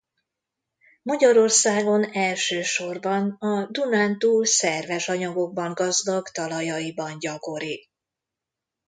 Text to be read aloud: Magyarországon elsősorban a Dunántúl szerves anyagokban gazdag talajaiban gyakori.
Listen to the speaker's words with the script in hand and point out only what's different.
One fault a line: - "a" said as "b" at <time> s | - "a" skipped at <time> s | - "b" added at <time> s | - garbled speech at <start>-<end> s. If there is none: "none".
none